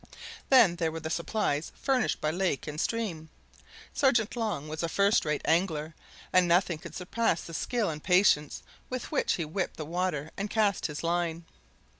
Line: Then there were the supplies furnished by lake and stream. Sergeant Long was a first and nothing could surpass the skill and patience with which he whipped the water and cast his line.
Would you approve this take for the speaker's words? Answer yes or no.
no